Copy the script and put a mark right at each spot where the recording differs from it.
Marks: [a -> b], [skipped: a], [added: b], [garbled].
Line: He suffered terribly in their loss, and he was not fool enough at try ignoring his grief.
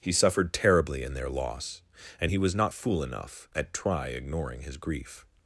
He suffered terribly in their loss, and he was not fool enough at try ignoring his grief.